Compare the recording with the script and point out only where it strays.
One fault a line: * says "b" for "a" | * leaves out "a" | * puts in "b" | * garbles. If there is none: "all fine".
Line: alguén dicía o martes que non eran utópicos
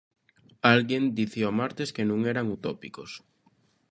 all fine